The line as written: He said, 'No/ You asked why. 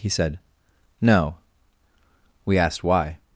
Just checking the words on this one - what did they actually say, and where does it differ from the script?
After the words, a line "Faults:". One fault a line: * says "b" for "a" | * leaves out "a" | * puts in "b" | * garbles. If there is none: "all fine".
He said, 'No/ We asked why.
Faults:
* says "We" for "You"